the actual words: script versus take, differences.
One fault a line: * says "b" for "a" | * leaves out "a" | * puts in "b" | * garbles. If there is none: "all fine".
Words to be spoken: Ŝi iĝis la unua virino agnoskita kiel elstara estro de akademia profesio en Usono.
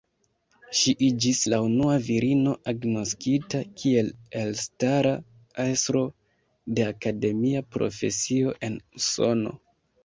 all fine